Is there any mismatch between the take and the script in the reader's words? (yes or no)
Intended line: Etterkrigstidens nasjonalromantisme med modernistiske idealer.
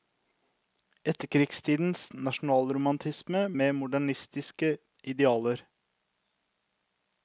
no